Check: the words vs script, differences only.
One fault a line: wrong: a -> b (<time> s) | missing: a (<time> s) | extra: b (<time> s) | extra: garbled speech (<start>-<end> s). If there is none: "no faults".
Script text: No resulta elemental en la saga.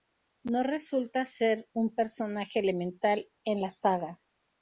extra: ser un personaje (1.2 s)